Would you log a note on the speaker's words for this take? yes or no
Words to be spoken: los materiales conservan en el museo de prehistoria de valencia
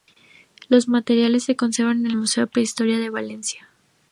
yes